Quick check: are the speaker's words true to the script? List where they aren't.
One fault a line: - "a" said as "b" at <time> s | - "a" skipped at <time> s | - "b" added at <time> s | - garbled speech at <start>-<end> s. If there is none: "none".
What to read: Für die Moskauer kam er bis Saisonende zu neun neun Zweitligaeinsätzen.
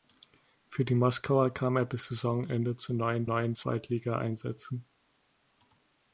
none